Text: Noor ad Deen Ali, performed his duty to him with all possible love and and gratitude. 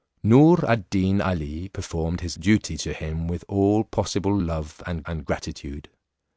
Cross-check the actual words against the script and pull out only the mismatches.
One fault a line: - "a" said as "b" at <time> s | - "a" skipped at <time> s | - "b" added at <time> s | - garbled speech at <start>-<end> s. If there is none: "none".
none